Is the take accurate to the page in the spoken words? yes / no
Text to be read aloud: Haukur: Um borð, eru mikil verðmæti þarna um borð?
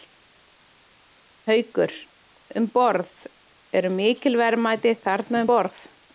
yes